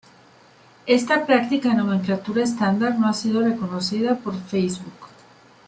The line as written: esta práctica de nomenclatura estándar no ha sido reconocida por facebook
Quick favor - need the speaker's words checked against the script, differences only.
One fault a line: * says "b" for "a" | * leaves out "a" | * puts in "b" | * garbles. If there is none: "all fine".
all fine